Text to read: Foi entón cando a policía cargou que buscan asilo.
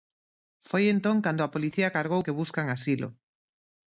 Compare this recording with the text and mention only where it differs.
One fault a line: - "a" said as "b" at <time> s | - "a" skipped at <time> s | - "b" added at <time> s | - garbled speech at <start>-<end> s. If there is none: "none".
none